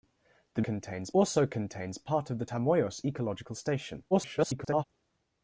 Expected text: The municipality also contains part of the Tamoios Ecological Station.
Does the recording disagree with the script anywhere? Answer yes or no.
yes